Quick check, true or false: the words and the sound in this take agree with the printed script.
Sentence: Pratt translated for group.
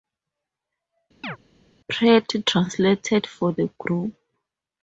false